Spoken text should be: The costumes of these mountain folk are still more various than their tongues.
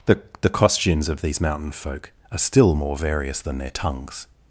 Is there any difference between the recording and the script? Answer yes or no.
yes